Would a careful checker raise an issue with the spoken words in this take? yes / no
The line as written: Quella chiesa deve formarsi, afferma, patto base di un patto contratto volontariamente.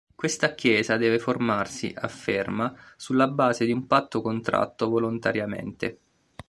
yes